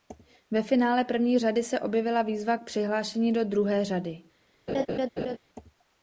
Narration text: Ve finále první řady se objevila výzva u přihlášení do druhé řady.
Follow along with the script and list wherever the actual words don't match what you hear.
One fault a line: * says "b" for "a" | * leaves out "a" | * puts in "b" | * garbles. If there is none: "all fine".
* says "k" for "u"